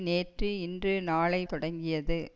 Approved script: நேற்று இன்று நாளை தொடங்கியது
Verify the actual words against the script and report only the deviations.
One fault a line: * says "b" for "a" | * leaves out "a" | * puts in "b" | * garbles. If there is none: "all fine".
all fine